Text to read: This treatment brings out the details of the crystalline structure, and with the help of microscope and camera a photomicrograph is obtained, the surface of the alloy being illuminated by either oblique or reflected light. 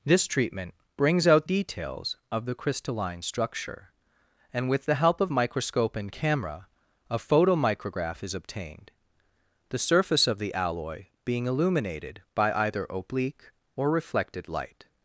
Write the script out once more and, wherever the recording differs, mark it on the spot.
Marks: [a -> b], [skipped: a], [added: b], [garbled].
This treatment brings out [skipped: the] details of the crystalline structure, and with the help of microscope and camera a photomicrograph is obtained, the surface of the alloy being illuminated by either oblique or reflected light.